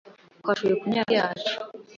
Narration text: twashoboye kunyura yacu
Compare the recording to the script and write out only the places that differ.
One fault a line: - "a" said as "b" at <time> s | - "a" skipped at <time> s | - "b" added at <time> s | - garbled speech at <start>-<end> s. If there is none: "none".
none